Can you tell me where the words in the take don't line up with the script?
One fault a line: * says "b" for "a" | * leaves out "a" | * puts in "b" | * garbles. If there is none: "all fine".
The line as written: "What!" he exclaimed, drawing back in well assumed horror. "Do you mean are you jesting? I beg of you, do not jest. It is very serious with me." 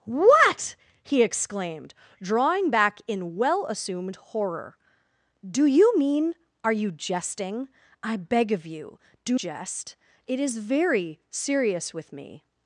* leaves out "not"